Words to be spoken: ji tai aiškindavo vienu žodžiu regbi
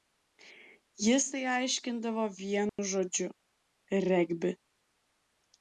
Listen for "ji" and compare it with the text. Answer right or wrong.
wrong